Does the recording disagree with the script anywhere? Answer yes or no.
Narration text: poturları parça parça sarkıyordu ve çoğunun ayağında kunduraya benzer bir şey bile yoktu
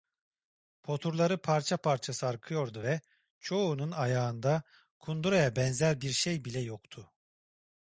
no